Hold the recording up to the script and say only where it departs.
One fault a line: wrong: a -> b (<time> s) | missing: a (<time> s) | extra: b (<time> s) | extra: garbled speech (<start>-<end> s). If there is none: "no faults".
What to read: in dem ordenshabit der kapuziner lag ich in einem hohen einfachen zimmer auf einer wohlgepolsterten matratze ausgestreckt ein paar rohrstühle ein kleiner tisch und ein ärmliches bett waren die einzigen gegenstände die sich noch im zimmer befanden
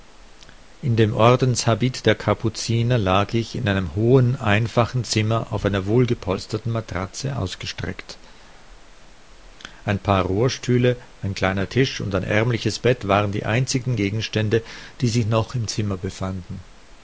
no faults